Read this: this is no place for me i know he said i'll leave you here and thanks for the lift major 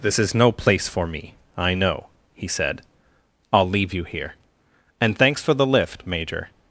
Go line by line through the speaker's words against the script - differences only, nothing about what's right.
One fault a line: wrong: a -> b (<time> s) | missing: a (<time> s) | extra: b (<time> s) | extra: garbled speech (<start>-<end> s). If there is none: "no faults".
no faults